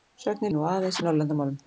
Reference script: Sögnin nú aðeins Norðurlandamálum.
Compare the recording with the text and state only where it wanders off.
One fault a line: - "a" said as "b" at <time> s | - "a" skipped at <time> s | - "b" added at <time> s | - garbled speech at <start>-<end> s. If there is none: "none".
none